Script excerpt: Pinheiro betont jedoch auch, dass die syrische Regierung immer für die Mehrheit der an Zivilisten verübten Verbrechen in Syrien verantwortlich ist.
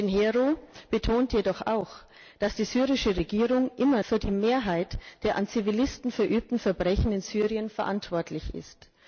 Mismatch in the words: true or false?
false